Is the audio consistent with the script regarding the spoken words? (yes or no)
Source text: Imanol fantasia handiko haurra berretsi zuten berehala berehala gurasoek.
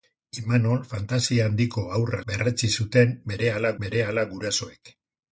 yes